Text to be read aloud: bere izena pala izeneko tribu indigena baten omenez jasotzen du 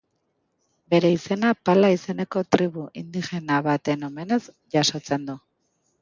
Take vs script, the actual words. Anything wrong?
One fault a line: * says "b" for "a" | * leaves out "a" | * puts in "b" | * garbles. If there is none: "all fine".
all fine